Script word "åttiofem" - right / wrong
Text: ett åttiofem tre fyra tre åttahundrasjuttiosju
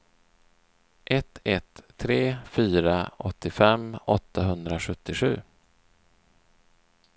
wrong